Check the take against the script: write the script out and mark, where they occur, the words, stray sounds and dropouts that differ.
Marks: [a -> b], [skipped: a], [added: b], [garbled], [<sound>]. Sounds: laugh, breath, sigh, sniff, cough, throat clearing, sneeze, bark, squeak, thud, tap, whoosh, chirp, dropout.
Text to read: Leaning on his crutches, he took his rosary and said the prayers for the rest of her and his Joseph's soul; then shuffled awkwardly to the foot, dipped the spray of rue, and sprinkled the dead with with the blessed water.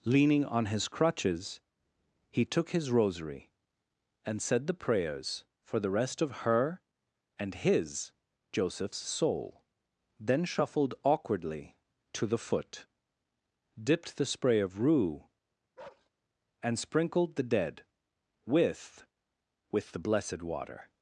Leaning on his crutches, he took his rosary and said the prayers for the rest of her and his Joseph's soul; then shuffled awkwardly to the foot, dipped the spray of rue, [bark] and sprinkled the dead with with the blessed water.